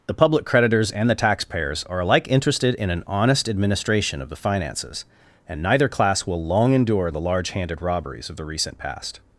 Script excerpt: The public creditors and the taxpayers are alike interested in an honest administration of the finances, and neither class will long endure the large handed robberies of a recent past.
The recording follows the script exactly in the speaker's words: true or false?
false